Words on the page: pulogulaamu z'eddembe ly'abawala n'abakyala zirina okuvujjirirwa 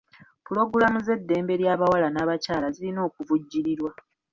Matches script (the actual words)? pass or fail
pass